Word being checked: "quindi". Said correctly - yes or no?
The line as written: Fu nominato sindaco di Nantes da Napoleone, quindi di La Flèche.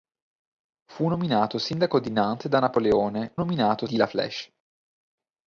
no